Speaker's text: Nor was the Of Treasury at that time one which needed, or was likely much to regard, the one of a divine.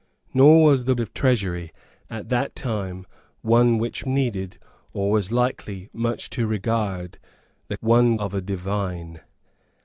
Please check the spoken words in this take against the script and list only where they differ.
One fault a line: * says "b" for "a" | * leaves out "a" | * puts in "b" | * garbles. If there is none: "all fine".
all fine